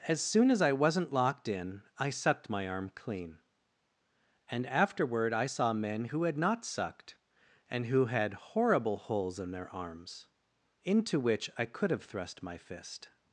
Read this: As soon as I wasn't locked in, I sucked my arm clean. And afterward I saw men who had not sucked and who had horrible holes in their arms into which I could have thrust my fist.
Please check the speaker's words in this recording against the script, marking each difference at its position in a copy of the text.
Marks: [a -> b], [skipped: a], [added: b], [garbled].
As soon as I wasn't locked in, I sucked my arm clean. And afterward I saw men who had not sucked and who had horrible holes in their arms into which I could have thrust my fist.